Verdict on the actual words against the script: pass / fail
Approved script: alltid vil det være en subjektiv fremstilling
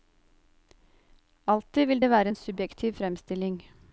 pass